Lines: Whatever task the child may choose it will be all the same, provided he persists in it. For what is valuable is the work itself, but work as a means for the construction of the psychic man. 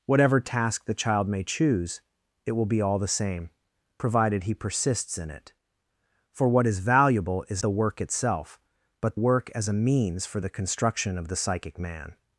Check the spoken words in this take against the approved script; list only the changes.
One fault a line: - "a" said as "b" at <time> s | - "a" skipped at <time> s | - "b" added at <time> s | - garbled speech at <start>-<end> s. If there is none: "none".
none